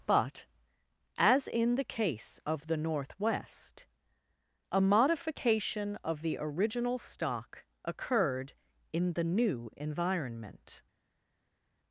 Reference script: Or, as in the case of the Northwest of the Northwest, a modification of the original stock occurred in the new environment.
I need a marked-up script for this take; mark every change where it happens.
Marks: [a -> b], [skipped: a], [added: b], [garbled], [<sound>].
[Or, -> But] as in the case of the Northwest [skipped: of the Northwest,] a modification of the original stock occurred in the new environment.